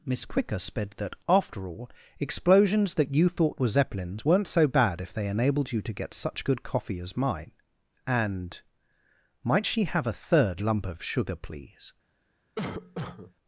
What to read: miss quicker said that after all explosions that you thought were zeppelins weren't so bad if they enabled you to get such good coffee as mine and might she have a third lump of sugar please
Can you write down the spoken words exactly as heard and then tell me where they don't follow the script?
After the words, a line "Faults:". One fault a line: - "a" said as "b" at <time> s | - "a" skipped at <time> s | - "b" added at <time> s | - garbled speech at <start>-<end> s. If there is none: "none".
miss quicker sped that after all explosions that you thought were zeppelins weren't so bad if they enabled you to get such good coffee as mine and might she have a third lump of sugar please
Faults:
- "said" said as "sped" at 0.6 s